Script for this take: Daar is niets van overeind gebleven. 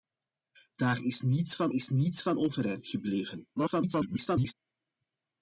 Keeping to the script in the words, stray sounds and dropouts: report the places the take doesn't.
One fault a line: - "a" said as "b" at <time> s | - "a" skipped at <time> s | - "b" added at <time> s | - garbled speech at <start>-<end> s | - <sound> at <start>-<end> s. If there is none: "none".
- "is niets van" added at 1.7 s
- garbled speech at 3.6-4.5 s